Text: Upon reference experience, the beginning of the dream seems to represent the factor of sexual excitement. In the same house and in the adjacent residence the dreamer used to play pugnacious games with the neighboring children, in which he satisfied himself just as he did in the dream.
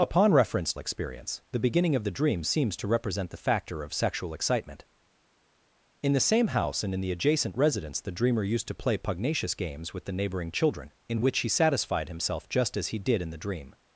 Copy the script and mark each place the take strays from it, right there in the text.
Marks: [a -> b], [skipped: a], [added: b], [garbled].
Upon reference experience, the beginning of the dream seems to represent the factor of sexual excitement. In the same house and in the adjacent residence the dreamer used to play pugnacious games with the neighboring children, in which he satisfied himself just as he did in the dream.